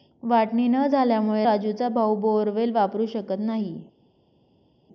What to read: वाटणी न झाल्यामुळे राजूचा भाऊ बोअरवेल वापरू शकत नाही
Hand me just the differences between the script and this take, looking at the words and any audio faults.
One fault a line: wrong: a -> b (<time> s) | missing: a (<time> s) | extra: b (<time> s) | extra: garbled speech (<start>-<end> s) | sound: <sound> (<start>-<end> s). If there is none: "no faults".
no faults